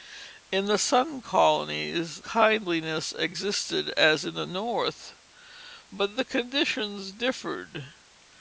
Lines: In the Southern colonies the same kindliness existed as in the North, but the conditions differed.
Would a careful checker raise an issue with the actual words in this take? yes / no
yes